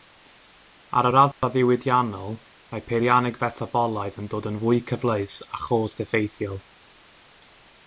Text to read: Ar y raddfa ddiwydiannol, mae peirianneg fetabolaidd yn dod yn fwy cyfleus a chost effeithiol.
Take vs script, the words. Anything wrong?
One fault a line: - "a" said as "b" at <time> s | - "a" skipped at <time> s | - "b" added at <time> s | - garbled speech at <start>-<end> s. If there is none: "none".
none